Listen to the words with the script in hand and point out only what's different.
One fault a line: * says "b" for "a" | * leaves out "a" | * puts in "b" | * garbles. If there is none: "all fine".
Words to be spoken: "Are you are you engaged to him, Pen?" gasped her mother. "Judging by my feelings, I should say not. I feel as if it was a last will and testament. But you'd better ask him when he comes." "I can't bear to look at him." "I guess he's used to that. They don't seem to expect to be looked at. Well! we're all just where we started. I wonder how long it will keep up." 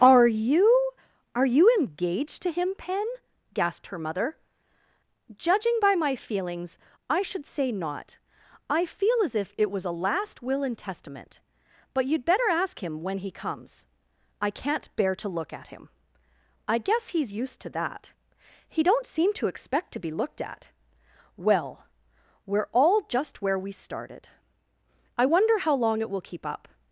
* says "He" for "They"